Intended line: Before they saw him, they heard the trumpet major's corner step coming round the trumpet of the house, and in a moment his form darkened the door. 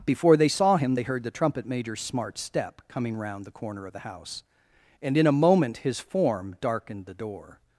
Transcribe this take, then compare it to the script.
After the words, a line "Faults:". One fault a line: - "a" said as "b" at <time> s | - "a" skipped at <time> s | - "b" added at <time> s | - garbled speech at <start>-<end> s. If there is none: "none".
Before they saw him, they heard the trumpet major's smart step coming round the corner of the house, and in a moment his form darkened the door.
Faults:
- "corner" said as "smart" at 2.0 s
- "trumpet" said as "corner" at 3.5 s